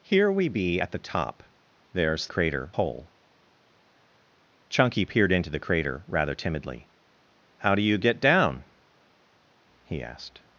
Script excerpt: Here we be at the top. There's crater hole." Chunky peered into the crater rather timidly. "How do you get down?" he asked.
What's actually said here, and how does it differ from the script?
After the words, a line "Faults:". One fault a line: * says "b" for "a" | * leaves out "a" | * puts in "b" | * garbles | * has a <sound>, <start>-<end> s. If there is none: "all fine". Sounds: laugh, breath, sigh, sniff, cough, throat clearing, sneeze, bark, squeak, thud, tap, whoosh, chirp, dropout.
Here we be at the top. There's crater hole." Chunky peered into the crater rather timidly. "How do you get down?" he asked.
Faults:
all fine